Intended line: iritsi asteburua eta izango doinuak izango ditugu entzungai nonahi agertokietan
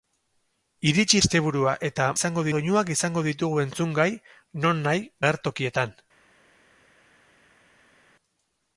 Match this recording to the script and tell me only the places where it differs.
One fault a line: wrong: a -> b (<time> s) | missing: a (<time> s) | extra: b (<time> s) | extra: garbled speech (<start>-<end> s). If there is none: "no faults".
no faults